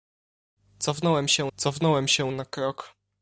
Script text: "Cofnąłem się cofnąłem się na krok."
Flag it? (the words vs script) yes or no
no